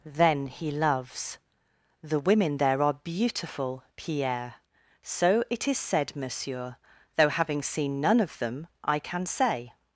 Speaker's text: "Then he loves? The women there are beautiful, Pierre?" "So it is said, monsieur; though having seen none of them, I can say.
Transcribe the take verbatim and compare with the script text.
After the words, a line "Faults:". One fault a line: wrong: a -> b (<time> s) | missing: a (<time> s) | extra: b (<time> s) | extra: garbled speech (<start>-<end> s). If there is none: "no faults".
"Then he loves? The women there are beautiful, Pierre?" "So it is said, monsieur; though having seen none of them, I can say.
Faults:
no faults